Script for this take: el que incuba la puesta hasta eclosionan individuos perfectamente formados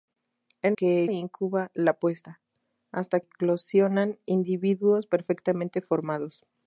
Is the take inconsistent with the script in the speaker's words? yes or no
no